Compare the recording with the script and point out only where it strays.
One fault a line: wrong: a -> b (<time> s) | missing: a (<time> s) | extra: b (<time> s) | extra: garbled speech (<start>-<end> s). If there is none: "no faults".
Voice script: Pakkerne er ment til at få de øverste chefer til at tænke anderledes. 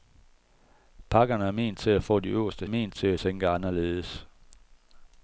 wrong: chefer -> ment (2.7 s)